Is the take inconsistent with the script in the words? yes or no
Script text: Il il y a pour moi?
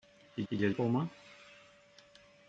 no